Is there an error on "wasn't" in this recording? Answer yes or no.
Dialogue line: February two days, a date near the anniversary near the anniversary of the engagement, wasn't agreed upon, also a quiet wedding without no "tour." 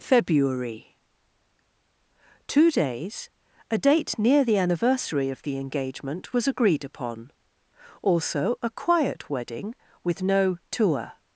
yes